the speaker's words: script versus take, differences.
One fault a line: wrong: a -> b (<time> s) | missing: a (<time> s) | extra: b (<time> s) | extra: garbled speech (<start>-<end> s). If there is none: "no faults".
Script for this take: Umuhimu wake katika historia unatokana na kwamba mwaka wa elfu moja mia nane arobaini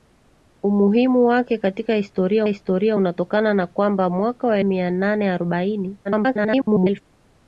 extra: historia (2.5 s)
missing: elfu moja (4.6 s)
extra: garbled speech (6.0-7.0 s)